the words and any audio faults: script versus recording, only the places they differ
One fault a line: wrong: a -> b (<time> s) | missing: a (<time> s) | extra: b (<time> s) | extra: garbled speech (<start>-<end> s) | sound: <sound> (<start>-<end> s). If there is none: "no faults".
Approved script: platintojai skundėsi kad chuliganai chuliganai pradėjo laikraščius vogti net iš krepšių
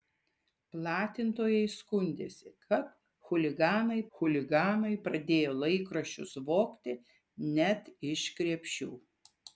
no faults